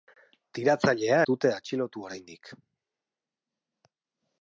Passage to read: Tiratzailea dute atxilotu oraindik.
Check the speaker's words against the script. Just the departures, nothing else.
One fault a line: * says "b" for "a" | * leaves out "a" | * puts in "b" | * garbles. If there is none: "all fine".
all fine